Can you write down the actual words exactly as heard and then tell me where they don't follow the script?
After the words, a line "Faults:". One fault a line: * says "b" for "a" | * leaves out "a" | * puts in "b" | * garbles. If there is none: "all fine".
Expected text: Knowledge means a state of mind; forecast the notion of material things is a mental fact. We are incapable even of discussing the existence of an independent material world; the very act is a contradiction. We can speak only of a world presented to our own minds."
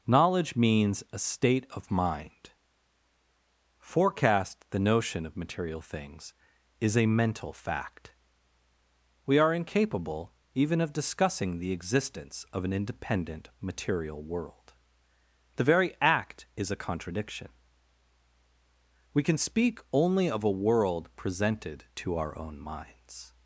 Knowledge means a state of mind; forecast the notion of material things is a mental fact. We are incapable even of discussing the existence of an independent material world; the very act is a contradiction. We can speak only of a world presented to our own minds."
Faults:
all fine